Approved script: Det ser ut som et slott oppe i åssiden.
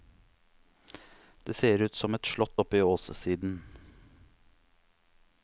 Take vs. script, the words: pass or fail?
pass